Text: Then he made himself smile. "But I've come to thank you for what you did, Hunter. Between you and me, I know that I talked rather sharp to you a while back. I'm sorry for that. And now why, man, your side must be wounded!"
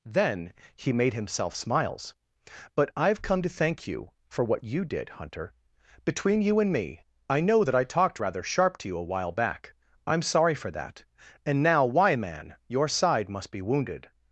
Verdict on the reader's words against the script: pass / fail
fail